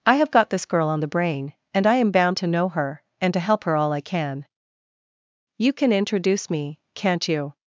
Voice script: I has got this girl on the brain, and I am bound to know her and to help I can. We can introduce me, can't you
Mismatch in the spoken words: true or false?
true